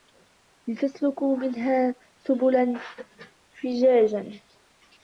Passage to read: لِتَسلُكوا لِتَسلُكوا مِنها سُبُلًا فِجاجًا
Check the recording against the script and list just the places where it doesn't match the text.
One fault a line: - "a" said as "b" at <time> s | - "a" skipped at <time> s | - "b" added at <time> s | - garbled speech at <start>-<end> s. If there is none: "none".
- "لِتَسلُكوا" skipped at 1.4 s